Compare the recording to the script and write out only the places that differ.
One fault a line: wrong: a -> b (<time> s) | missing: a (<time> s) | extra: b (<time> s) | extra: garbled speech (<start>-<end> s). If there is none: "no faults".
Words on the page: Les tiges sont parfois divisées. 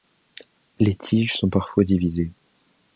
no faults